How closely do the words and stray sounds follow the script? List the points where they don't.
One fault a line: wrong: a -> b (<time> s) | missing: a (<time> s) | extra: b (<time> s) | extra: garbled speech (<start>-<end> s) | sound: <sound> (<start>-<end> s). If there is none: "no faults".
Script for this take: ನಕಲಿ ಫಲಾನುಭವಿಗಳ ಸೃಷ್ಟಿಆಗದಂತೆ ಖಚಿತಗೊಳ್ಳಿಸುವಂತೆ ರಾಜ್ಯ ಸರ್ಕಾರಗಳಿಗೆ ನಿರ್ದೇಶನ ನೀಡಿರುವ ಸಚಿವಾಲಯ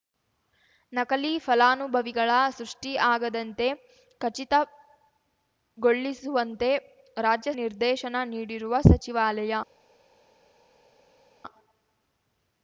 missing: ಸರ್ಕಾರಗಳಿಗೆ (7.5 s)